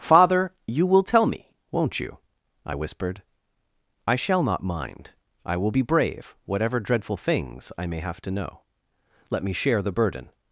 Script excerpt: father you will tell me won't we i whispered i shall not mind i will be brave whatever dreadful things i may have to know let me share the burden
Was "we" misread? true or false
true